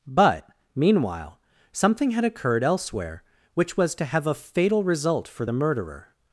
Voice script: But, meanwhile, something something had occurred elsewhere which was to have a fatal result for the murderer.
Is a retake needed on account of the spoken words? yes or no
yes